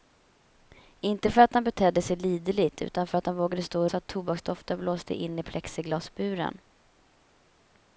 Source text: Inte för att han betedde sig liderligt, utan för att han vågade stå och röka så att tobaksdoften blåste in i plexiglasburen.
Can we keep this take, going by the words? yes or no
no